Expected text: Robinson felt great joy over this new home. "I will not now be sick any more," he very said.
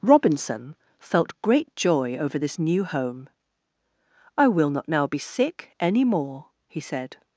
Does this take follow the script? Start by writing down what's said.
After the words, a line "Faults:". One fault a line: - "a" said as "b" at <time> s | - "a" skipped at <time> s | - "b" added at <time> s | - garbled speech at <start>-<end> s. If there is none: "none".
Robinson felt great joy over this new home. "I will not now be sick any more," he said.
Faults:
- "very" skipped at 6.8 s